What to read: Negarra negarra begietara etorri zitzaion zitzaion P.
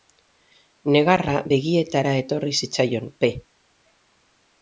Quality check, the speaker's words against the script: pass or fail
fail